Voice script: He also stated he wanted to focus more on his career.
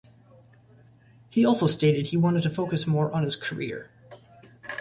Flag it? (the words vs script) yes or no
no